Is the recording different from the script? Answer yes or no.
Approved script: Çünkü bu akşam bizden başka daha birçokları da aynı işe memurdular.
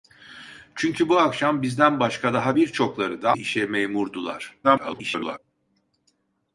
yes